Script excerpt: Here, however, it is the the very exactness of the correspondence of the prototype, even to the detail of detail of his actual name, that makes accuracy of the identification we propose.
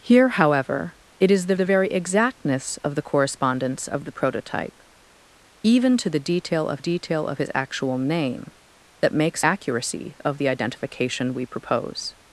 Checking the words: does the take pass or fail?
pass